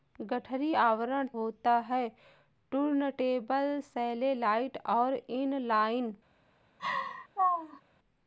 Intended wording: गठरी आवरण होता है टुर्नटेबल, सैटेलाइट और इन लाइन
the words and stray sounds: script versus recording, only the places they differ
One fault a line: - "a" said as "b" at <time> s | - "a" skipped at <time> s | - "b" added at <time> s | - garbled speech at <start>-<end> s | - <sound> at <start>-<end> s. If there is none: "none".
- laugh at 6.8-7.8 s